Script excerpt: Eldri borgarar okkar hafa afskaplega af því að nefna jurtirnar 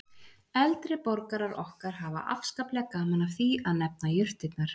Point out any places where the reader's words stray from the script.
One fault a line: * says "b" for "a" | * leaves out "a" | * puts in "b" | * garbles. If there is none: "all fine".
* puts in "gaman"